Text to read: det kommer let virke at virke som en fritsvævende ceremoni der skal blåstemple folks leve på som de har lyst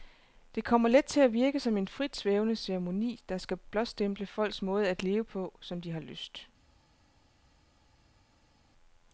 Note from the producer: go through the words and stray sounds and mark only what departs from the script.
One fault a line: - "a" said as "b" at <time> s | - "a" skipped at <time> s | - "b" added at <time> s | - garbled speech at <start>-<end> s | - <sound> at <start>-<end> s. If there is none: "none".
- "virke" said as "til" at 1.1 s
- "måde at" added at 4.6 s